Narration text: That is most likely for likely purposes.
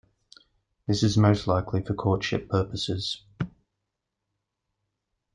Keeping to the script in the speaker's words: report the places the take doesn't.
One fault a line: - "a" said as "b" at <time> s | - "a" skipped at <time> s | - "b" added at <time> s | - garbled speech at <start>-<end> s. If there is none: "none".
- "That" said as "This" at 0.9 s
- "likely" said as "courtship" at 1.9 s